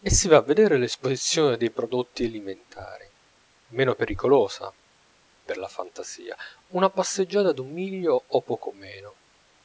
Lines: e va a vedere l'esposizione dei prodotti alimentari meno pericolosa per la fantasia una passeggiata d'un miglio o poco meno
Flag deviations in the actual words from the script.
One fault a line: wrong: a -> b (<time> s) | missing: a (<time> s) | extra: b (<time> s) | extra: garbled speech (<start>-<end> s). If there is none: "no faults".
extra: si (0.1 s)